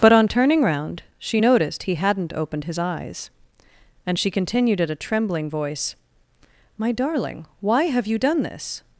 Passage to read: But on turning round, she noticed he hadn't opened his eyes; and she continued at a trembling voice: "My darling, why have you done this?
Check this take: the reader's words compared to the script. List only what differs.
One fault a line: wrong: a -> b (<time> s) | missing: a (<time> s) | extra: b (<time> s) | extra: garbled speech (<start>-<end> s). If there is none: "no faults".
no faults